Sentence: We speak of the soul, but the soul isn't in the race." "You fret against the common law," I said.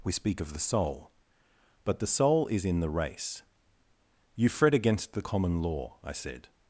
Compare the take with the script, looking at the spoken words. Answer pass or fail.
fail